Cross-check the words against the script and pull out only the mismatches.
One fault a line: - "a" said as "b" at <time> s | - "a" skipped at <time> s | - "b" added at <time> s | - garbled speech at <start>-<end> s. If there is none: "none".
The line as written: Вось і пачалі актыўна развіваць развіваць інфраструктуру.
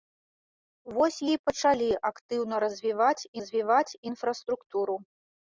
none